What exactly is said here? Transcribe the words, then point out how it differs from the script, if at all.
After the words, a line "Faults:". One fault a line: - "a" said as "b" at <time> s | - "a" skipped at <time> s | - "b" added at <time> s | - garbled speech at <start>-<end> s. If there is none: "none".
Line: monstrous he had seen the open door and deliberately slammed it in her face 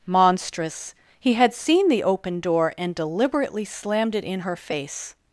monstrous he had seen the open door and deliberately slammed it in her face
Faults:
none